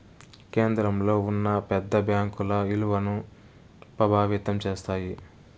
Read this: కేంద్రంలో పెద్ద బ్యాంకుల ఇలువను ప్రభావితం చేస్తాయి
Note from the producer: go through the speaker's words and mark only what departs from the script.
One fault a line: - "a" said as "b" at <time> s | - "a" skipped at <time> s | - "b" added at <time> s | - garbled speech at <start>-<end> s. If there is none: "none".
- "ఉన్న" added at 1.2 s